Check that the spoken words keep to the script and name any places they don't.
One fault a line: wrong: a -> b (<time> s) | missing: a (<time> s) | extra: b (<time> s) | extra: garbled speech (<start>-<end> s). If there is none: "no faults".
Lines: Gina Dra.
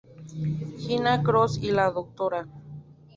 extra: Cross y la (1.2 s)